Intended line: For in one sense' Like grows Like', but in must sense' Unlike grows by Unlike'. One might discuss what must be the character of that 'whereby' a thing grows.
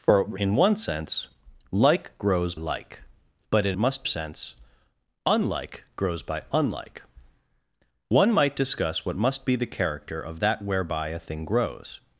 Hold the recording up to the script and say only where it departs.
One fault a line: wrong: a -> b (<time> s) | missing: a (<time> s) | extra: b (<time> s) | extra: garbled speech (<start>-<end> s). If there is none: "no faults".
no faults